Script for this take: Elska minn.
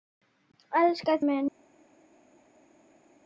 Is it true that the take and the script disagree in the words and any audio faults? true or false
false